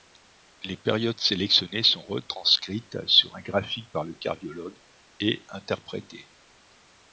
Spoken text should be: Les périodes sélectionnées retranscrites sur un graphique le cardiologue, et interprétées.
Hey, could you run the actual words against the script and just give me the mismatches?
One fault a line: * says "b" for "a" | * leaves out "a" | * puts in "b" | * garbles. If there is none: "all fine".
* puts in "sont"
* puts in "par"